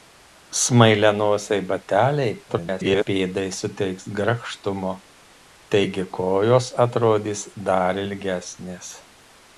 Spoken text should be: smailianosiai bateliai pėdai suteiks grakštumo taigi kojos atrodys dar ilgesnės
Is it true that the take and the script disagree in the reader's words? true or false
true